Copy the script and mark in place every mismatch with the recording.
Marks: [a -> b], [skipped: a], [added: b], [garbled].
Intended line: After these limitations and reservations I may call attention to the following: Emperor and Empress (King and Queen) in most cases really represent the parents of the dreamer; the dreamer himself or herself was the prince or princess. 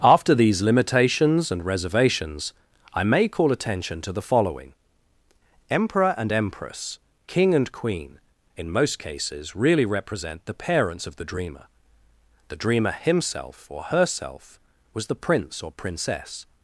After these limitations and reservations I may call attention to the following: Emperor and Empress (King and Queen) in most cases really represent the parents of the dreamer; the dreamer himself or herself was the prince or princess.